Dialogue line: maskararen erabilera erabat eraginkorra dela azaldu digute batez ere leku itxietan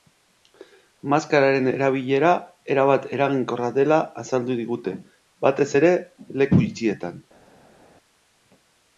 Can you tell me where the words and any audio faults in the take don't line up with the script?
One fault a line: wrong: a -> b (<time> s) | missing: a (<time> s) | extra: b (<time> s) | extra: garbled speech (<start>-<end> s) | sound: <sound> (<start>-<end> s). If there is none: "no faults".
no faults